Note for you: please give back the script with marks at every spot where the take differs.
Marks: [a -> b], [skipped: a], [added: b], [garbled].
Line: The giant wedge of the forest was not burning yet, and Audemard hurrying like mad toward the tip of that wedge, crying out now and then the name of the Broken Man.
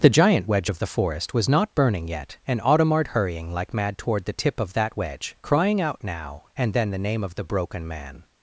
The giant wedge of the forest was not burning yet, and Audemard hurrying like mad toward the tip of that wedge, crying out now and then the name of the Broken Man.